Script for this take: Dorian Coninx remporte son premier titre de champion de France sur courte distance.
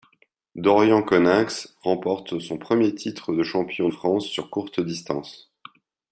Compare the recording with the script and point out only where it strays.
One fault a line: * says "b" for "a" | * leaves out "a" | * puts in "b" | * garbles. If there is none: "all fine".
* leaves out "de"